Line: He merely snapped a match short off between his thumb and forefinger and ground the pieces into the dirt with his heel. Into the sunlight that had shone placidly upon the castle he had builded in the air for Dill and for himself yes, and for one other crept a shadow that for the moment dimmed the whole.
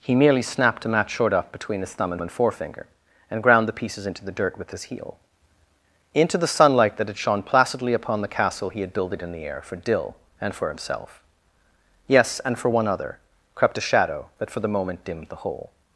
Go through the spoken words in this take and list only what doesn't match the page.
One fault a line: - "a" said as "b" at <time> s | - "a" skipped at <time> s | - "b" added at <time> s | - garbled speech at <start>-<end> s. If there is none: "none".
- "and" added at 2.2 s